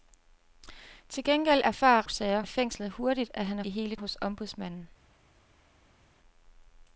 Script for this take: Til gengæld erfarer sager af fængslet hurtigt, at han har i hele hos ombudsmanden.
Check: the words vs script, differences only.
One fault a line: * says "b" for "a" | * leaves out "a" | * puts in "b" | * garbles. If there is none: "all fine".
all fine